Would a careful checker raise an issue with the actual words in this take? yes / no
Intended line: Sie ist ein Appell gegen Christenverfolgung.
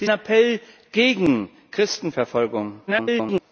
yes